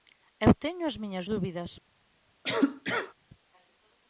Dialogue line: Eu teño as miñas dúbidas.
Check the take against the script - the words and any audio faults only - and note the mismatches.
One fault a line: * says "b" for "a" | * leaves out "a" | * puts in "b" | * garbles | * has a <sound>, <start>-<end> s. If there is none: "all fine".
* has a cough, 2.4-3.1 s